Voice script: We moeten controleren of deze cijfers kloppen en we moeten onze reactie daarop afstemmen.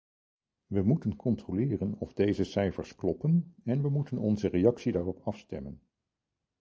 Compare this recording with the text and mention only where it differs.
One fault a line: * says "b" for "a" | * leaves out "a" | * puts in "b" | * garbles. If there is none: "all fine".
all fine